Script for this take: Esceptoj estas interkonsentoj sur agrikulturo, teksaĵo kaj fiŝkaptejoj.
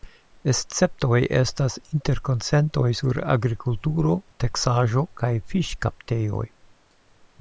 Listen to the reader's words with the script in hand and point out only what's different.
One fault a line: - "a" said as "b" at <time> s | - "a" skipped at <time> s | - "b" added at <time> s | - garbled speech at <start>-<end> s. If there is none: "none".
none